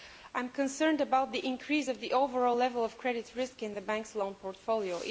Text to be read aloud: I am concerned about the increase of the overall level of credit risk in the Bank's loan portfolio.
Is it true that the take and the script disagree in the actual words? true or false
false